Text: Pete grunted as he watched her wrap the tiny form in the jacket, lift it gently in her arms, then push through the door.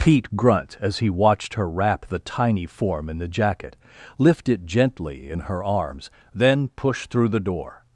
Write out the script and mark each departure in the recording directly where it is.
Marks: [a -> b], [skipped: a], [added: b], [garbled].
Pete [grunted -> grunt] as he watched her wrap the tiny form in the jacket, lift it gently in her arms, then push through the door.